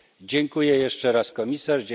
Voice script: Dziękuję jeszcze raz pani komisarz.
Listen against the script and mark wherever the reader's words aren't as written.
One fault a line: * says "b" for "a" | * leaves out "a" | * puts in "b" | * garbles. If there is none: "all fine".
* leaves out "pani"